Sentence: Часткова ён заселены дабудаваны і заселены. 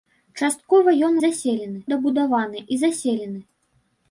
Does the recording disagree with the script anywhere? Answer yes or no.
no